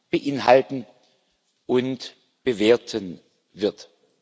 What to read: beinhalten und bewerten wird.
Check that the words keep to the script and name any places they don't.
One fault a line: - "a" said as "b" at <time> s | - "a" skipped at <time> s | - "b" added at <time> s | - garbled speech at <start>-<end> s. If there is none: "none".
none